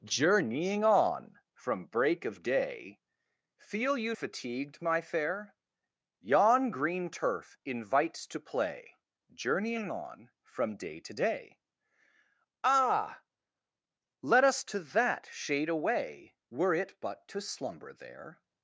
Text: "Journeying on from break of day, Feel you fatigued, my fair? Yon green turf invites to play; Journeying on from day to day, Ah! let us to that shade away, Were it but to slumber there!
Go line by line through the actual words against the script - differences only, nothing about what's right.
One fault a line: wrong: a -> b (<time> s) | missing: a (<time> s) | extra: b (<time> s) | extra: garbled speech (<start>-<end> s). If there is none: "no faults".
no faults